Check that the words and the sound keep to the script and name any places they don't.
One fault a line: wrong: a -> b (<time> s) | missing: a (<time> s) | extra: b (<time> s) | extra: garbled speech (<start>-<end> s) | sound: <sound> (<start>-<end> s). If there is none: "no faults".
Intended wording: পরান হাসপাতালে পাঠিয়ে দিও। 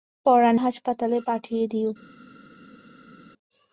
no faults